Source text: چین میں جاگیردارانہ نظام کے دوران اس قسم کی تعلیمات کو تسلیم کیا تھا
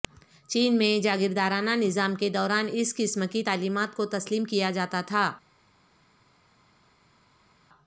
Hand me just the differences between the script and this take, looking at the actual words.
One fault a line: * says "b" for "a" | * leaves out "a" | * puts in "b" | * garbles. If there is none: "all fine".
* puts in "جاتا"